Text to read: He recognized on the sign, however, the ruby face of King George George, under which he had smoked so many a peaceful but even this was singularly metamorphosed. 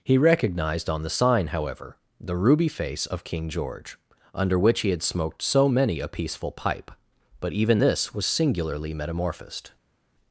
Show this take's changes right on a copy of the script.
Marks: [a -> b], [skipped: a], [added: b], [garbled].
He recognized on the sign, however, the ruby face of King George [skipped: George,] under which he had smoked so many a peaceful [added: pipe] but even this was singularly metamorphosed.